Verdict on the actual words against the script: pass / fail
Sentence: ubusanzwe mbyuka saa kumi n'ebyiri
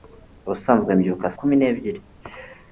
fail